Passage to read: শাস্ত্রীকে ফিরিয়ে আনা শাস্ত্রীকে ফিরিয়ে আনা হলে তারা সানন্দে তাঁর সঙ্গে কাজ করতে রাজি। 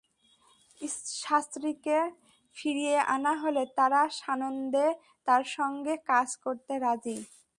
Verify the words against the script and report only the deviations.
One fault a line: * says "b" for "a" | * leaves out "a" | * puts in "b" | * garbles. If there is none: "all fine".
* leaves out "শাস্ত্রীকে ফিরিয়ে আনা"